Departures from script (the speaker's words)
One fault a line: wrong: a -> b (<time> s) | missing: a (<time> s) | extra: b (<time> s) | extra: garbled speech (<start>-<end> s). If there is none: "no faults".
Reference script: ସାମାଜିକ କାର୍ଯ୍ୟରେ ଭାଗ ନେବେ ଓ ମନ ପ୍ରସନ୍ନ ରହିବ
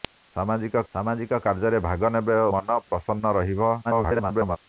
extra: ସାମାଜିକ (0.9 s)
missing: ଓ (2.4 s)
extra: garbled speech (3.8-4.6 s)